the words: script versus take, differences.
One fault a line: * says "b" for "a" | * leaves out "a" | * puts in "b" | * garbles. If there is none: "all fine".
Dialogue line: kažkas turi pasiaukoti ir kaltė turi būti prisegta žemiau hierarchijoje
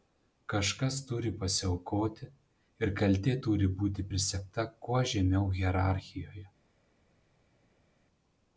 * puts in "kuo"